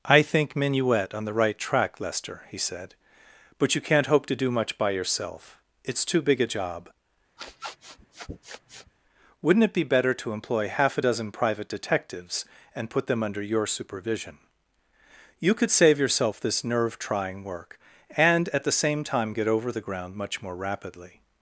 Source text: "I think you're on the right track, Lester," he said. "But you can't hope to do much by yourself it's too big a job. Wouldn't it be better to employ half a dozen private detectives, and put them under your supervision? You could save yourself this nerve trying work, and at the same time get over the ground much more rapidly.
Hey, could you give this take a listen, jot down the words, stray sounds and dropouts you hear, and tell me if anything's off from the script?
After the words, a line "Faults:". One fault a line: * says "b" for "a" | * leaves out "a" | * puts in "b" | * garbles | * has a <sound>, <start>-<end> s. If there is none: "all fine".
"I think minuet on the right track, Lester," he said. "But you can't hope to do much by yourself it's too big a job. Wouldn't it be better to employ half a dozen private detectives, and put them under your supervision? You could save yourself this nerve trying work, and at the same time get over the ground much more rapidly.
Faults:
* says "minuet" for "you're"
* has a sniff, 7.4-8.9 s